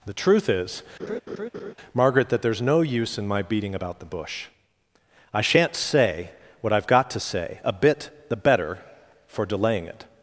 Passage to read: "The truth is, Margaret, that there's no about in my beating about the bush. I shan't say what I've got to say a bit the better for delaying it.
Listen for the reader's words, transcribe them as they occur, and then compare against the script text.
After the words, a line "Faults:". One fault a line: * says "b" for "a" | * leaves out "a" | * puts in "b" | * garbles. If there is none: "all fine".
"The truth is, Margaret, that there's no use in my beating about the bush. I shan't say what I've got to say a bit the better for delaying it.
Faults:
* says "use" for "about"